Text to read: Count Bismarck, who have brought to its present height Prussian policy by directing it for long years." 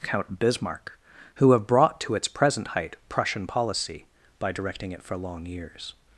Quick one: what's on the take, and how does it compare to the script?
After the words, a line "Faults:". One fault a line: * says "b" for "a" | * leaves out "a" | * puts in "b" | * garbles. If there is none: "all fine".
Count Bismarck, who have brought to its present height Prussian policy by directing it for long years."
Faults:
all fine